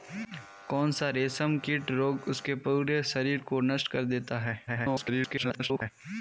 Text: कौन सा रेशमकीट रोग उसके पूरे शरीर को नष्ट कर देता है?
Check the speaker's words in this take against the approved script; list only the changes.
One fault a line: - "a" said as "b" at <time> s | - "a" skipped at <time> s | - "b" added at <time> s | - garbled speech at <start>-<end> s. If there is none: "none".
- garbled speech at 4.7-5.9 s